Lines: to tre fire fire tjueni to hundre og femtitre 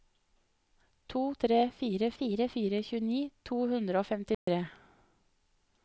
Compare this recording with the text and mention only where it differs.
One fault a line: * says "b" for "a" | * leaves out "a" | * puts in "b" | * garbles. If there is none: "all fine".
* puts in "fire"